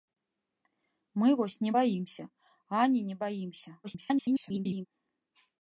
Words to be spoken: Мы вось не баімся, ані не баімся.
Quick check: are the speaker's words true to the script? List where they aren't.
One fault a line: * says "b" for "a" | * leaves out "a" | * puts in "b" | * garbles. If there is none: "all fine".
* garbles